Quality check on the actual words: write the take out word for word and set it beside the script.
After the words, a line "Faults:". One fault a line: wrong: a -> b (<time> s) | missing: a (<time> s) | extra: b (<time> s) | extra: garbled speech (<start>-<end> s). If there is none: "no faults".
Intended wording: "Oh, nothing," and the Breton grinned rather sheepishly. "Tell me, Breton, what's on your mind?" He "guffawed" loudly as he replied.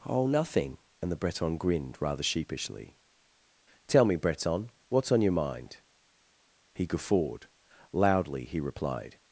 "Oh, nothing," and the Breton grinned rather sheepishly. "Tell me, Breton, what's on your mind?" He "guffawed" loudly he replied.
Faults:
missing: as (8.4 s)